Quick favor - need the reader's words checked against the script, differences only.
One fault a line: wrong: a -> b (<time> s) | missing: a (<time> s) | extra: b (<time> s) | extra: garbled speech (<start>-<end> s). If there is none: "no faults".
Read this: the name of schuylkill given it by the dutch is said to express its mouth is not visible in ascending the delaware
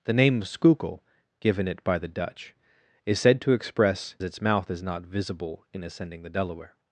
no faults